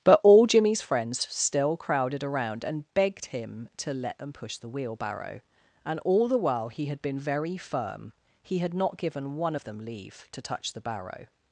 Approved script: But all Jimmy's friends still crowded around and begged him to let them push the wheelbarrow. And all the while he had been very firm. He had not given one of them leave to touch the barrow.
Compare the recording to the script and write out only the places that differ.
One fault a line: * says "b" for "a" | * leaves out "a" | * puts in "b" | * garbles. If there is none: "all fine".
all fine